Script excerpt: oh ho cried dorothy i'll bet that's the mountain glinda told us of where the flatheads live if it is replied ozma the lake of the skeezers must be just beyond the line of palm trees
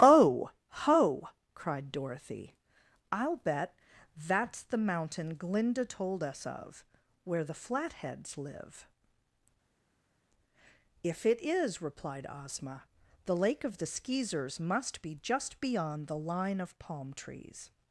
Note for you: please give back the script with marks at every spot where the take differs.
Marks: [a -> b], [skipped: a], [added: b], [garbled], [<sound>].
oh ho cried dorothy i'll bet that's the mountain glinda told us of where the flatheads live if it is replied ozma the lake of the skeezers must be just beyond the line of palm trees